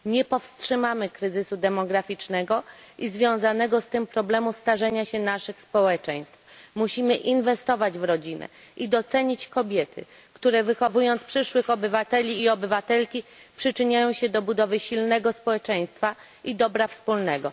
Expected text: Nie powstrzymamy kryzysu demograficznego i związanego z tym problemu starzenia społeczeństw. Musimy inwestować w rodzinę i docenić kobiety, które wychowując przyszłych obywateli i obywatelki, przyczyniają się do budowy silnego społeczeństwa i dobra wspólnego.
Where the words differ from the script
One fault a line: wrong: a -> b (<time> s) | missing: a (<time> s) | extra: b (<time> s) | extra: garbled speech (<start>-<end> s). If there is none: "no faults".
extra: się naszych (5.0 s)